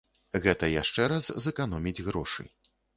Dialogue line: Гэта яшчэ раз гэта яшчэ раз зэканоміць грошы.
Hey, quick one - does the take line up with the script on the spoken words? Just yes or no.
no